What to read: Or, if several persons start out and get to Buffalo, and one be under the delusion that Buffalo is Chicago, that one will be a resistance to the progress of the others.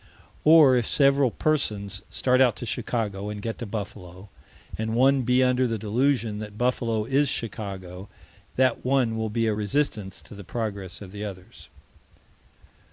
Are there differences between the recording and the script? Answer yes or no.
yes